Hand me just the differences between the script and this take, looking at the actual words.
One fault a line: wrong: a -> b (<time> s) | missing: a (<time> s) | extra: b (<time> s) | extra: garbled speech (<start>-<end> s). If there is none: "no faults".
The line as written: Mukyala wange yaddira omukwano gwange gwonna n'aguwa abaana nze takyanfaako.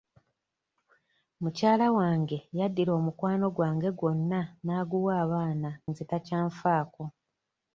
no faults